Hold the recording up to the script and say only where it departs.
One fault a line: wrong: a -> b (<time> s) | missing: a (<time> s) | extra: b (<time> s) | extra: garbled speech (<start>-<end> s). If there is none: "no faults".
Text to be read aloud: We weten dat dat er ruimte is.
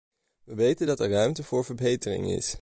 missing: dat (1.0 s)
extra: voor verbetering (1.4 s)